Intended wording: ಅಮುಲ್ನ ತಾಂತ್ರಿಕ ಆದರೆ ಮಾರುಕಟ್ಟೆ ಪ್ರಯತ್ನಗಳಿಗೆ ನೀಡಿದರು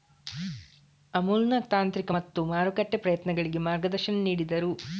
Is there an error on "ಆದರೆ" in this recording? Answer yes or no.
yes